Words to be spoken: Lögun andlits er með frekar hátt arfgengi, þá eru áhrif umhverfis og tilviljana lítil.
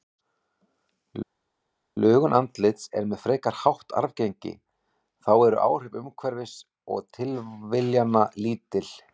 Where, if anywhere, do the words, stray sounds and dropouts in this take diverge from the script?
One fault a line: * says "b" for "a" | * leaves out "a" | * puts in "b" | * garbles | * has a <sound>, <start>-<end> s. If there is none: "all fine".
all fine